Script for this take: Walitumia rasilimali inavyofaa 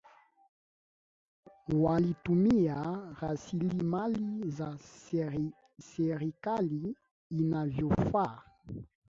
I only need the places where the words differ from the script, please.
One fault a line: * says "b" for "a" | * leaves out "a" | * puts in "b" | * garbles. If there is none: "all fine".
* puts in "za serikali"